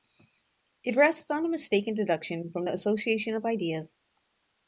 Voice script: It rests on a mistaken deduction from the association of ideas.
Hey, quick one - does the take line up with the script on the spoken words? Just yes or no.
yes